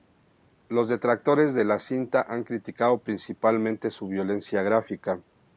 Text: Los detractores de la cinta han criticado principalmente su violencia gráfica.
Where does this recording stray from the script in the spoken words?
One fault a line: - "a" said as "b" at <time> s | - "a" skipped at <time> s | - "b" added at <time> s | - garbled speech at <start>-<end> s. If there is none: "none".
none